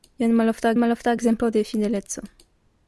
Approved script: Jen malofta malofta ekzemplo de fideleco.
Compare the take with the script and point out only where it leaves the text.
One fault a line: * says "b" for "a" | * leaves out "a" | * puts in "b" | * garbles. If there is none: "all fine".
all fine